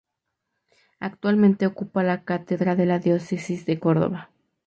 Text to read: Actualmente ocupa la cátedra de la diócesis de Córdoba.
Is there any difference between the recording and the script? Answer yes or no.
no